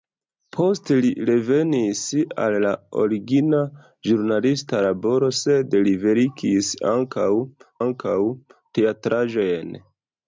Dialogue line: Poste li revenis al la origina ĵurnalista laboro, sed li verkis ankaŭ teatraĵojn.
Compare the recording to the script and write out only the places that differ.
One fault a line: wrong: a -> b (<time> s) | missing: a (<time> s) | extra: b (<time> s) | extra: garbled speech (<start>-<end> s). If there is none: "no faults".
extra: ankaŭ (7.8 s)